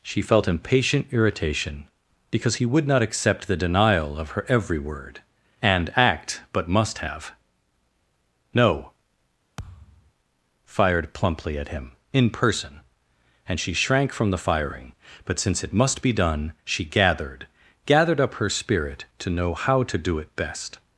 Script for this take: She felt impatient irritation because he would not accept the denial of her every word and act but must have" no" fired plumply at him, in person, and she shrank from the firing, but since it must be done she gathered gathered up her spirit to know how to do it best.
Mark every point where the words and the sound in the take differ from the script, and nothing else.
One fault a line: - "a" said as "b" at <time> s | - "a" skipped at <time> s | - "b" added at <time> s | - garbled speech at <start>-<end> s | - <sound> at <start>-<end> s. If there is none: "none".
- thud at 9.6-10.1 s